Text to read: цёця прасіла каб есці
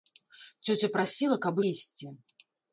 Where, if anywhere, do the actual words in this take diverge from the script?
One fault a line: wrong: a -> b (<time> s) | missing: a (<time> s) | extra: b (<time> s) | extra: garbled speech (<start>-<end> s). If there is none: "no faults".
no faults